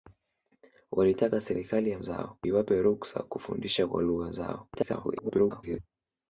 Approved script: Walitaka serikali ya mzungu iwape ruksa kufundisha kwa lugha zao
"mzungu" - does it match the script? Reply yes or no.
no